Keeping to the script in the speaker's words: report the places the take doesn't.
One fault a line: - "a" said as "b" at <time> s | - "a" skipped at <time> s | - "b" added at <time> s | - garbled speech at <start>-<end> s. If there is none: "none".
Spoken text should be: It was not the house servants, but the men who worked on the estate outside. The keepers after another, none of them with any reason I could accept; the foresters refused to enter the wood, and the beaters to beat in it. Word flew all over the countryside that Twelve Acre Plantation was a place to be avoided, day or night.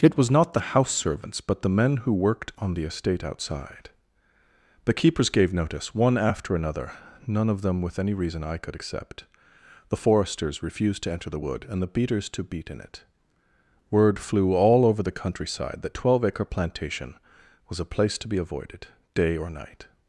- "gave notice one" added at 5.3 s